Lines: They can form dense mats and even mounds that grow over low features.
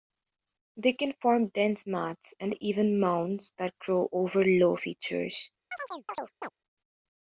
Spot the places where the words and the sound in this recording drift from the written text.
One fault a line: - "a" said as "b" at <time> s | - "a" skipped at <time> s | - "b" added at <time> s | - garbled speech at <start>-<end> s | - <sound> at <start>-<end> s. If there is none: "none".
- chirp at 5.7-6.5 s